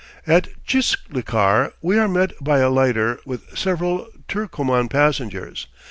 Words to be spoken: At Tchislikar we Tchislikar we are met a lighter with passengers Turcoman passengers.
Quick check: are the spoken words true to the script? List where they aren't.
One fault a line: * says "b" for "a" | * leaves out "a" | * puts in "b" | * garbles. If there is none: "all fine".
* leaves out "Tchislikar we"
* puts in "by"
* says "several" for "passengers"